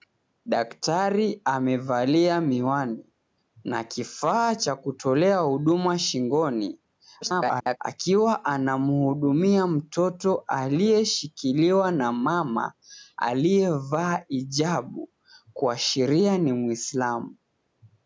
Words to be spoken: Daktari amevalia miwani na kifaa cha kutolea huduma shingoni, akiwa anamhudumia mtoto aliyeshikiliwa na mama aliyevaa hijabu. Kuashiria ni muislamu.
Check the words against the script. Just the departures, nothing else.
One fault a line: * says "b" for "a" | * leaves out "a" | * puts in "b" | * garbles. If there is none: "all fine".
* garbles